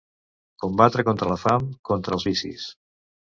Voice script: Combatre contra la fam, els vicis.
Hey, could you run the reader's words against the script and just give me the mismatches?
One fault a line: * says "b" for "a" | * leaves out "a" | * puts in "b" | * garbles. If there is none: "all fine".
* puts in "contra"